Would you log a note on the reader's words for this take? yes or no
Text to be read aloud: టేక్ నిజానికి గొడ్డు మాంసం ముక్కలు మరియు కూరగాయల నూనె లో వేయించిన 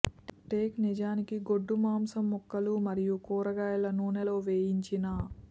no